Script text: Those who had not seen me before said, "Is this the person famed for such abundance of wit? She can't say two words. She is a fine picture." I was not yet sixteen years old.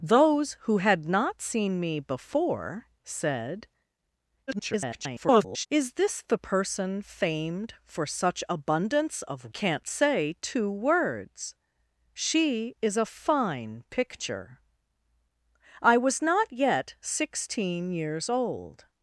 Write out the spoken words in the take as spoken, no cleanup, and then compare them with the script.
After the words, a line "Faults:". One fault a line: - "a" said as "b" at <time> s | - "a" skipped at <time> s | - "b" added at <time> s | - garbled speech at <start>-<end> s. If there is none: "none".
Those who had not seen me before said, [garbled] "Is this the person famed for such abundance of can't say two words. She is a fine picture." I was not yet sixteen years old.
Faults:
- garbled speech at 4.5-5.7 s
- "wit She" skipped at 9.5 s